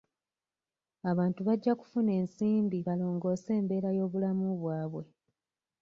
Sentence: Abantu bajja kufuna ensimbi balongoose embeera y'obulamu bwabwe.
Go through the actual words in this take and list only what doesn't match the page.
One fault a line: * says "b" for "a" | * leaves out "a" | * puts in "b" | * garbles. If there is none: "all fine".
all fine